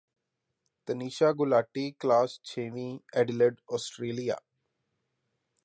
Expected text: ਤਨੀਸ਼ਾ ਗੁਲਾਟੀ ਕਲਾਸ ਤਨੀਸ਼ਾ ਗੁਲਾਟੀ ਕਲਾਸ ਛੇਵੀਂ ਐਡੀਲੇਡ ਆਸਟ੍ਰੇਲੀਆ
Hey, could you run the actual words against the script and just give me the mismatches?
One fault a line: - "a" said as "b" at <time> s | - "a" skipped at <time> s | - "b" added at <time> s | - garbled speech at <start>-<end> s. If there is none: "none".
- "ਤਨੀਸ਼ਾ ਗੁਲਾਟੀ ਕਲਾਸ" skipped at 2.4 s